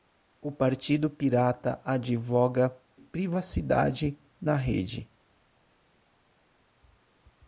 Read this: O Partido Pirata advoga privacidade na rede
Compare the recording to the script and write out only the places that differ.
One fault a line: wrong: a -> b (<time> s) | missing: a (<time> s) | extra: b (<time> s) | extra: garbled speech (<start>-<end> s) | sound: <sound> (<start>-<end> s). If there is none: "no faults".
no faults